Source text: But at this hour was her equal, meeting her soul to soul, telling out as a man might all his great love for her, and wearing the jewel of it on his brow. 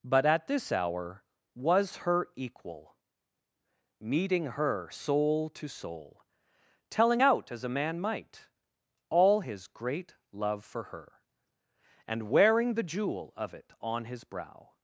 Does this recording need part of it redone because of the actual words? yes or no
no